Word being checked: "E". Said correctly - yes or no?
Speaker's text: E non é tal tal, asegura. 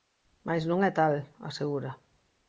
no